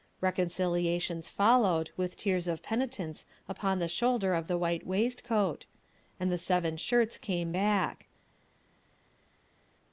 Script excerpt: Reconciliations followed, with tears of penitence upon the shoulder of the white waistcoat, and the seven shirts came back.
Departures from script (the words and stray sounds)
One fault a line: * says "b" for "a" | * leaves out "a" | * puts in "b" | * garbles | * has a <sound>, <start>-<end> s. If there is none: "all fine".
all fine